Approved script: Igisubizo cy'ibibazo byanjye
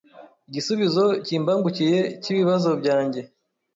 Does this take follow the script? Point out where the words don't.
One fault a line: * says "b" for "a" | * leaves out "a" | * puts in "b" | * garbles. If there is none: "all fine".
* puts in "kimbangukiye"